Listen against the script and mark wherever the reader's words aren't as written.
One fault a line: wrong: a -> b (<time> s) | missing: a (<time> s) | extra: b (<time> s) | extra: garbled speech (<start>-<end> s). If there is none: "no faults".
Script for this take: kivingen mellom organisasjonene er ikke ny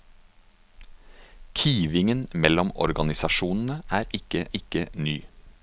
extra: ikke (4.5 s)